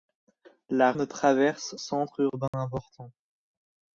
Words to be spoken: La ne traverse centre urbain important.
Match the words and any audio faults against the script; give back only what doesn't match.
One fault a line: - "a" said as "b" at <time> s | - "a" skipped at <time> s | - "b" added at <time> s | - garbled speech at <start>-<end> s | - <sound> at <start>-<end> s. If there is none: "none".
- dropout at 2.5-2.5 s